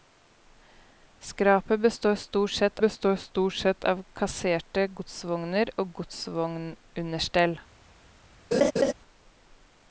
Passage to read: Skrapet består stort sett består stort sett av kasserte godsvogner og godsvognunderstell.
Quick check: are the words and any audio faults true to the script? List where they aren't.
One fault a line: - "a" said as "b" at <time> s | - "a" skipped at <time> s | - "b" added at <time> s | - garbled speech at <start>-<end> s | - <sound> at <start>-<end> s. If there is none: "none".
- laugh at 8.5-8.9 s